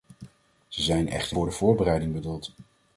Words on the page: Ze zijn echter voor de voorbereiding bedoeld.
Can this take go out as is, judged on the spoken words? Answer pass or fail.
pass